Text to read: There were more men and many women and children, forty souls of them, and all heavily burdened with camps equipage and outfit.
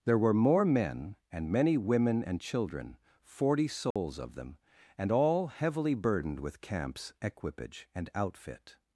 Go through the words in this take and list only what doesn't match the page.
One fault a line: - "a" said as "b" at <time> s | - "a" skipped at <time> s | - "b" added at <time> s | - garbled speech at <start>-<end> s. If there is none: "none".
none